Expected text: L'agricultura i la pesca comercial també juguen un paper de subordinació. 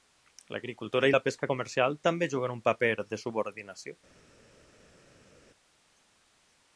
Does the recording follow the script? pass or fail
pass